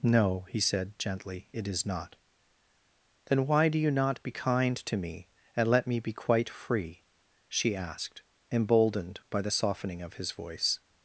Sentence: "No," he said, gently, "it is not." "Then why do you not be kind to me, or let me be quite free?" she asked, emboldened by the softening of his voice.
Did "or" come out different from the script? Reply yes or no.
yes